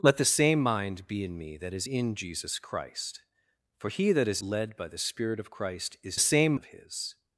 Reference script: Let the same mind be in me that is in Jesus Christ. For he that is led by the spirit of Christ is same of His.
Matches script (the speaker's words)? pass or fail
pass